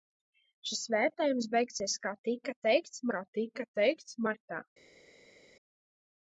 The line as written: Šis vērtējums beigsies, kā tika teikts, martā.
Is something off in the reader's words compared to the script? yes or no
yes